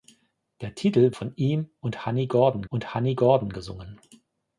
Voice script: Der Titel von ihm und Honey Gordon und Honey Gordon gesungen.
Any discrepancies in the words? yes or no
no